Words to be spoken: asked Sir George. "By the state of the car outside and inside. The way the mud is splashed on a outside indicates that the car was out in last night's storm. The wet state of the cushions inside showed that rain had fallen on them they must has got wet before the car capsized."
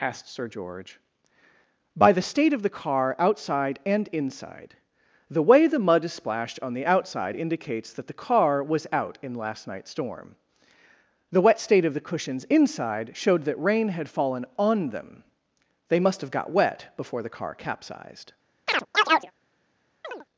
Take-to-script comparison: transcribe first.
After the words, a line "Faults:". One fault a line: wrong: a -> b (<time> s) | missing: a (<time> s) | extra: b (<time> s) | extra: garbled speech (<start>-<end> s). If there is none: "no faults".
asked Sir George. "By the state of the car outside and inside. The way the mud is splashed on the outside indicates that the car was out in last night's storm. The wet state of the cushions inside showed that rain had fallen on them they must have got wet before the car capsized."
Faults:
wrong: a -> the (6.7 s)
wrong: has -> have (16.2 s)